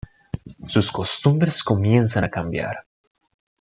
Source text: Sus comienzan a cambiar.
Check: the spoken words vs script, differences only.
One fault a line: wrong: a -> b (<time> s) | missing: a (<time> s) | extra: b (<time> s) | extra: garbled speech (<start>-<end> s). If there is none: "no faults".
extra: costumbres (0.9 s)